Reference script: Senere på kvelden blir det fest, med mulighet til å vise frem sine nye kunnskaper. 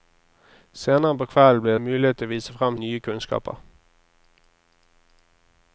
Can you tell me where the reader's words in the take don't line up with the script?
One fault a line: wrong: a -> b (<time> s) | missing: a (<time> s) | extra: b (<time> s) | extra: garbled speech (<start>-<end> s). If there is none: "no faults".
missing: det fest med (1.8 s)
missing: sine (2.8 s)